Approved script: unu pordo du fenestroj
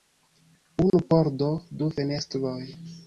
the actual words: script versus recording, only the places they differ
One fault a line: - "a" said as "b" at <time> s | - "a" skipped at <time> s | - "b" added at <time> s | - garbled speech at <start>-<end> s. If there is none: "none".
none